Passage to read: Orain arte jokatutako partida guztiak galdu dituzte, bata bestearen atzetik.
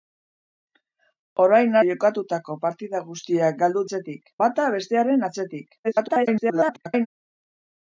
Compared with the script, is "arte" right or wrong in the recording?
wrong